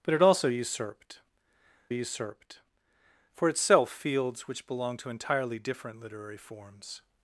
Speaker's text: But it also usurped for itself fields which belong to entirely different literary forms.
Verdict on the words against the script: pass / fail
fail